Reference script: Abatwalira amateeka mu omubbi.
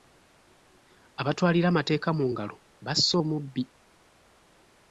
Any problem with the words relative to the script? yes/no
yes